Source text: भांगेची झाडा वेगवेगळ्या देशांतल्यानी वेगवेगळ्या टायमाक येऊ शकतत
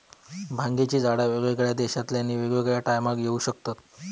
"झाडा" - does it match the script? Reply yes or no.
yes